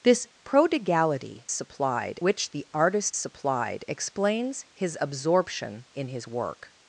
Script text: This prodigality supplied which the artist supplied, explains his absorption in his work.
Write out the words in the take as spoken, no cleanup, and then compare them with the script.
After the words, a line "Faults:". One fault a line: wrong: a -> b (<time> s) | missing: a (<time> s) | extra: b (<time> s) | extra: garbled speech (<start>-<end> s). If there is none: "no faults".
This prodigality supplied which the artist supplied, explains his absorption in his work.
Faults:
no faults